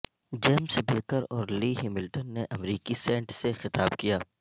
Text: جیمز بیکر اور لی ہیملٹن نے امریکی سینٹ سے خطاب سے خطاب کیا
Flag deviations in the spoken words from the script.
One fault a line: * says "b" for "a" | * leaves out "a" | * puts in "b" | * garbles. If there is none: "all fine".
* leaves out "سے خطاب"